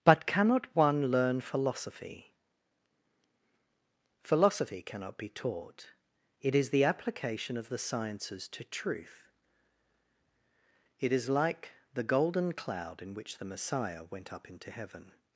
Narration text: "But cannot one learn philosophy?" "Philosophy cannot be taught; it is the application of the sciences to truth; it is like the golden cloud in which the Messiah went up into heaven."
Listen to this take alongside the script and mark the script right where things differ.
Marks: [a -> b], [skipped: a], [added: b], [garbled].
"But cannot one learn philosophy?" "Philosophy cannot be taught; it is the application of the sciences to truth; it is like the golden cloud in which the Messiah went up into heaven."